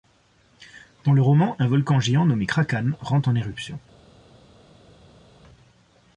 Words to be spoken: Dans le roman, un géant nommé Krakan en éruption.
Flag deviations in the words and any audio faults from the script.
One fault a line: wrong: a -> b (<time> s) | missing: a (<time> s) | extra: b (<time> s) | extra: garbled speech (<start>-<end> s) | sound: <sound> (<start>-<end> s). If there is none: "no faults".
extra: volcan (1.7 s)
extra: rentre (3.0 s)